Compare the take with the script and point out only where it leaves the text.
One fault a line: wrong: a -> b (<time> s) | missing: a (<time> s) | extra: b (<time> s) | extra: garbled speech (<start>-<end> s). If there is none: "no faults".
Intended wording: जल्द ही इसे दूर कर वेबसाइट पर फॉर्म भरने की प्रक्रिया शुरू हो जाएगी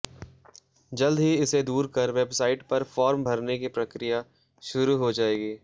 no faults